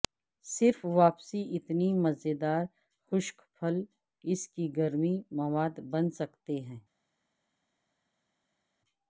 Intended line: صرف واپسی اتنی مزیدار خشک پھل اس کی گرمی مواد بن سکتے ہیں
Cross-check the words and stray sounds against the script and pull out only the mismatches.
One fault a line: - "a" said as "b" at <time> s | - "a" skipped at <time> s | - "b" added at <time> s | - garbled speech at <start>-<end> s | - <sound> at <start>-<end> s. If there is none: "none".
none